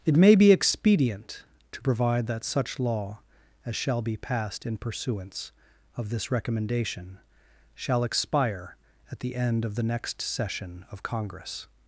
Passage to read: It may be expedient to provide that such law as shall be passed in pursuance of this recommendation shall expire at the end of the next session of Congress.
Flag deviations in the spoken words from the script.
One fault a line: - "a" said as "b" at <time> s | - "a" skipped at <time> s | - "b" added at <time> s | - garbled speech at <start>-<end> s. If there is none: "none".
none